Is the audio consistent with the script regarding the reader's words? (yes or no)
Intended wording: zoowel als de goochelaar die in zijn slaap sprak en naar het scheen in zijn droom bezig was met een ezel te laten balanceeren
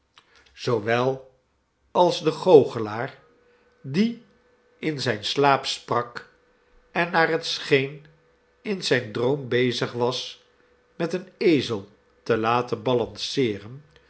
yes